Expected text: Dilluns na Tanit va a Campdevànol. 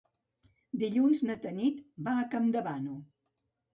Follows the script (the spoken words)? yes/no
yes